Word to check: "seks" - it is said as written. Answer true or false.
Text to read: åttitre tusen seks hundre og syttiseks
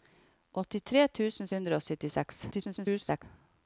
false